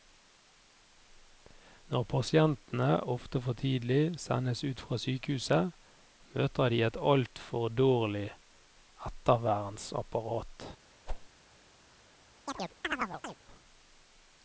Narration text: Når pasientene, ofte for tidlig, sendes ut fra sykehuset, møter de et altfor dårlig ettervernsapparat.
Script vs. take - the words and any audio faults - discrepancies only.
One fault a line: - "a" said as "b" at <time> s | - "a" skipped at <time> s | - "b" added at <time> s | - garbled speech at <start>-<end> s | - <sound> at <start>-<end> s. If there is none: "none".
- whoosh at 11.1-11.3 s
- chirp at 12.5-13.4 s